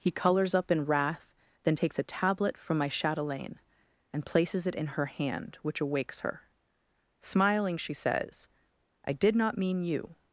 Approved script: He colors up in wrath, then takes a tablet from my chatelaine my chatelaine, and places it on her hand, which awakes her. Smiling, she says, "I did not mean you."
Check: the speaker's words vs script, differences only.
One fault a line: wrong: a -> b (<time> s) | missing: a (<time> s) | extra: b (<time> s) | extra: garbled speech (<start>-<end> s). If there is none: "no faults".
missing: my chatelaine (3.6 s)
wrong: on -> in (4.7 s)